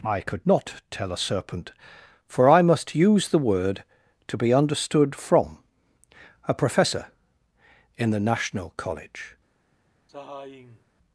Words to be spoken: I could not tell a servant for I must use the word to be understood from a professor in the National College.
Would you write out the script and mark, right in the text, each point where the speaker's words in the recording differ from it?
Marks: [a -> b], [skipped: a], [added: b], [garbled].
I could not tell a [servant -> serpent] for I must use the word to be understood from a professor in the National College.